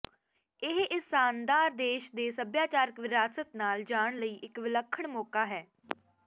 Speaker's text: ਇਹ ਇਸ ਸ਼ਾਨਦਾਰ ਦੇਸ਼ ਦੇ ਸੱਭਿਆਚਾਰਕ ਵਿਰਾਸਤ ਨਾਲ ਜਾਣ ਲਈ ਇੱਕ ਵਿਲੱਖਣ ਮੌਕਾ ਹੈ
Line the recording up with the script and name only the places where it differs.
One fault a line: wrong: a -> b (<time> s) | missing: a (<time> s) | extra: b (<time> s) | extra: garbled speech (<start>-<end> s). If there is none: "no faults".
no faults